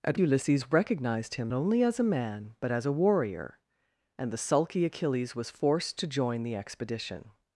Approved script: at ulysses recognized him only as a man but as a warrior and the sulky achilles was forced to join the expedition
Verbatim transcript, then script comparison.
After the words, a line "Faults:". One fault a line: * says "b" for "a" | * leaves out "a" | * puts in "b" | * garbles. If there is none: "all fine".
at ulysses recognized him only as a man but as a warrior and the sulky achilles was forced to join the expedition
Faults:
all fine